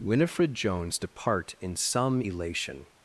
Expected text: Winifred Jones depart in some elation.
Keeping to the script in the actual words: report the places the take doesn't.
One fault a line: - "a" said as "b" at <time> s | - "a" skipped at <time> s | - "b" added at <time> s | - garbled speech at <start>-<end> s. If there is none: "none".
none